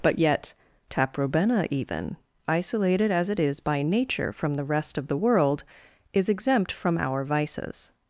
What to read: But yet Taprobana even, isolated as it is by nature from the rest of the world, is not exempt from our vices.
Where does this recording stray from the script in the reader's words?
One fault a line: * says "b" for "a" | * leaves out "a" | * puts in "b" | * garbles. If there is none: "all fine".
* leaves out "not"